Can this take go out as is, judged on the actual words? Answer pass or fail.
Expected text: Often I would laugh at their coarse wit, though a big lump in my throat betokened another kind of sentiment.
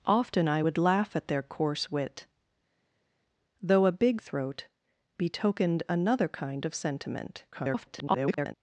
fail